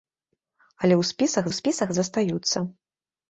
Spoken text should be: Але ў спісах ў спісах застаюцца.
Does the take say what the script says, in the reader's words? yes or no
yes